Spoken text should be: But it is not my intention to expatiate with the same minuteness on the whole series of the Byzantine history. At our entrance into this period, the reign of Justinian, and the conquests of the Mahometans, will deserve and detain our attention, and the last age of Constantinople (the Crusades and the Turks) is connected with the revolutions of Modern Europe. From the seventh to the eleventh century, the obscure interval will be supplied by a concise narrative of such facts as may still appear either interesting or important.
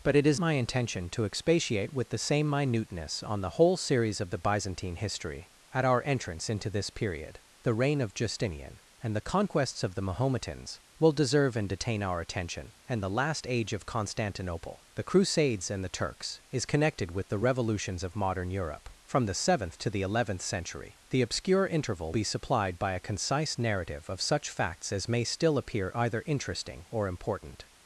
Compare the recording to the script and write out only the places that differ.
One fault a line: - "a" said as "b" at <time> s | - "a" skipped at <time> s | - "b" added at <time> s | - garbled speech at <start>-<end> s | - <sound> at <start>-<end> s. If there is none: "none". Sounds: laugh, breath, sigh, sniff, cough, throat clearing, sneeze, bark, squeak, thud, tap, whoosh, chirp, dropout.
- "not" skipped at 0.4 s
- "will" skipped at 22.1 s